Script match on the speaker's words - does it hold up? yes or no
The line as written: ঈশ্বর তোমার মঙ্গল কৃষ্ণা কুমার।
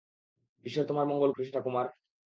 yes